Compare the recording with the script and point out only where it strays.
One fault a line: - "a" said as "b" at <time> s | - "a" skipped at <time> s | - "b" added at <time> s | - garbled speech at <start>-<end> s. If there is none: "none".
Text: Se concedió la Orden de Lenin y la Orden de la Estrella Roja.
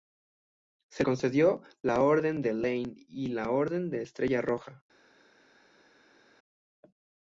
none